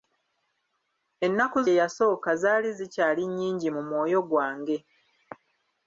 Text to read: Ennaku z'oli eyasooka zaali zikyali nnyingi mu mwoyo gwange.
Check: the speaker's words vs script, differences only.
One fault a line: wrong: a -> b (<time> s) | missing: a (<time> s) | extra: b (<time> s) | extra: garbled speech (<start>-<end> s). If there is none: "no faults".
missing: z'oli (1.6 s)